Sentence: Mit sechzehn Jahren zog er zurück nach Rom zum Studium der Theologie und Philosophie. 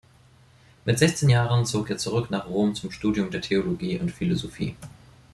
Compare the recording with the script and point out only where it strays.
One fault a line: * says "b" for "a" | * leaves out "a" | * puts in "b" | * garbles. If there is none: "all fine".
all fine